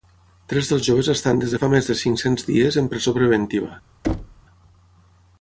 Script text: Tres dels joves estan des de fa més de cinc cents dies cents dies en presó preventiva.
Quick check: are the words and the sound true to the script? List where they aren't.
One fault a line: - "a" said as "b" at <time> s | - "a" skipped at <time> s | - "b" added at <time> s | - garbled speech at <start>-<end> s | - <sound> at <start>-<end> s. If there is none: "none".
- "cents dies" skipped at 2.8 s
- thud at 4.0-4.4 s